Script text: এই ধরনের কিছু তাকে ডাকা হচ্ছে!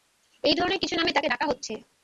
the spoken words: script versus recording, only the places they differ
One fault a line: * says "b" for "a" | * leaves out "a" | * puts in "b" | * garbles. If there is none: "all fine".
* puts in "নামে"